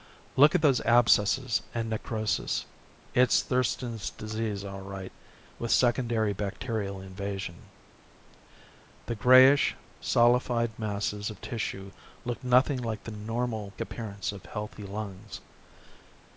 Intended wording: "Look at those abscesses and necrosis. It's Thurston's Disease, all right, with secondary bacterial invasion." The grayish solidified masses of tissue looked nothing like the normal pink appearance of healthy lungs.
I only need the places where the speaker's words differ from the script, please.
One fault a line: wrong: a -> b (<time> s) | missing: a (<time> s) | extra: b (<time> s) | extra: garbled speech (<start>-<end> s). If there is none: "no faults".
missing: pink (13.8 s)